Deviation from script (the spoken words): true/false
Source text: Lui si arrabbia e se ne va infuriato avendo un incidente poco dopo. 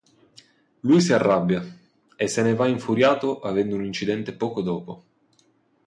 false